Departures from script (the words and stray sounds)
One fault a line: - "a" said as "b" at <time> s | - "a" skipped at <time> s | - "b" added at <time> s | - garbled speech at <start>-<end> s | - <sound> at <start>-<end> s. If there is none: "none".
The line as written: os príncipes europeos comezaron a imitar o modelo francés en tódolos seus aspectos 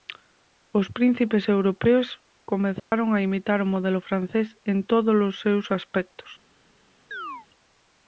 - dropout at 2.8-2.9 s
- chirp at 7.1-7.5 s